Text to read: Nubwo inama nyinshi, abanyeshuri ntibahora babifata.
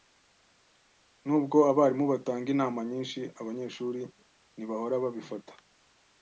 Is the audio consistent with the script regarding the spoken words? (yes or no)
no